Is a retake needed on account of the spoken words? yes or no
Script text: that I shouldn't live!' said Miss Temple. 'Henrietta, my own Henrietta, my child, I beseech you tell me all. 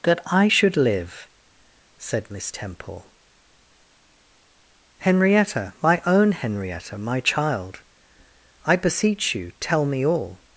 yes